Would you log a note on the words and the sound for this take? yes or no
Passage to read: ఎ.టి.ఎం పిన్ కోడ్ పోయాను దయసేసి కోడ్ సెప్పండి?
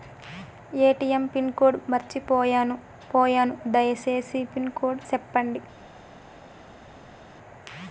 yes